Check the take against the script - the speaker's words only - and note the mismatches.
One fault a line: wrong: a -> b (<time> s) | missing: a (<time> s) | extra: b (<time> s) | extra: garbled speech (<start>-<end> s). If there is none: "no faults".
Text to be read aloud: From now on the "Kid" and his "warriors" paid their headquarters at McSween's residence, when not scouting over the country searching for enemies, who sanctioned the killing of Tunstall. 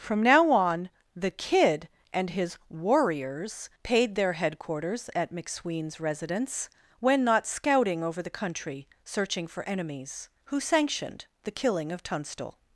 no faults